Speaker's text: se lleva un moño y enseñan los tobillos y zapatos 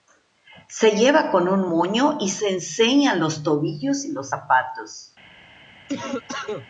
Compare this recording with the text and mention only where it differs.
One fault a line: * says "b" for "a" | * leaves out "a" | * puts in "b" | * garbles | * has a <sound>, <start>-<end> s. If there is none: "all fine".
* puts in "con"
* puts in "se"
* puts in "los"
* has a cough, 5.9-6.7 s